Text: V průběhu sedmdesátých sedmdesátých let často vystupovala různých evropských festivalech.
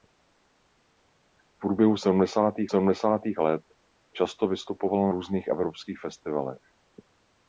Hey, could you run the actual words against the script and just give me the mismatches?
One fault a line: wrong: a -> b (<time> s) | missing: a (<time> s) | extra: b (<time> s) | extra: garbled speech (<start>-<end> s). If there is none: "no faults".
no faults